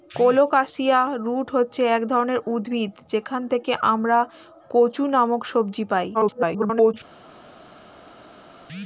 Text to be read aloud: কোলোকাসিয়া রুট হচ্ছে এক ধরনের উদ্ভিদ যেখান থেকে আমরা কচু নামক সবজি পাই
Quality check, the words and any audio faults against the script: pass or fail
fail